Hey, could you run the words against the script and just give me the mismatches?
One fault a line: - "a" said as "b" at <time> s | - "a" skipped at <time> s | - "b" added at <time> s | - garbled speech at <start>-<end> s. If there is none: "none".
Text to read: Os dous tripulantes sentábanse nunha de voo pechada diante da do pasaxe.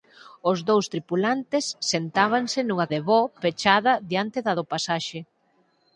none